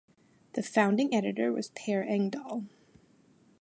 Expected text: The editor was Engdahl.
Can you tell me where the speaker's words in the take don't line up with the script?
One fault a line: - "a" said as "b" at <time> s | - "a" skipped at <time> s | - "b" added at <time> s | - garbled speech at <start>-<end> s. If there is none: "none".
- "founding" added at 0.6 s
- "Per" added at 1.7 s